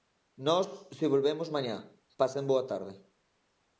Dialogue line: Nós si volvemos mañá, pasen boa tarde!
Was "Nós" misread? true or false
false